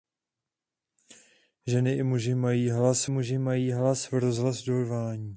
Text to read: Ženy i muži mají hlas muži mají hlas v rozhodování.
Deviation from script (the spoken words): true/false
false